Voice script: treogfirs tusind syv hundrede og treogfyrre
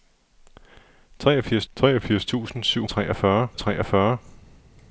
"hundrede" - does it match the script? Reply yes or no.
no